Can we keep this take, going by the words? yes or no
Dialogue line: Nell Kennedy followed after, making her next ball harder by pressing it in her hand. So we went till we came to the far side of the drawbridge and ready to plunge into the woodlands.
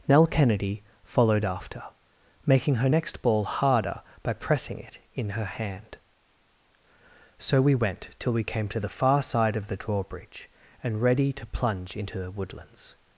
yes